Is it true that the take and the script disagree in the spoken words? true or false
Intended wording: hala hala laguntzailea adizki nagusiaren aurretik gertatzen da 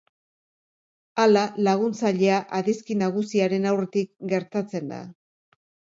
true